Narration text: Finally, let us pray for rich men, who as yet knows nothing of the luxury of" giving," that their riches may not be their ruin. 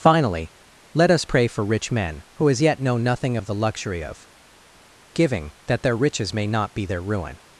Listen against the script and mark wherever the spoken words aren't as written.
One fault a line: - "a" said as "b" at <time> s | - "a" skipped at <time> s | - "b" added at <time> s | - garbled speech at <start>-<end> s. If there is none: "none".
- "knows" said as "know" at 2.8 s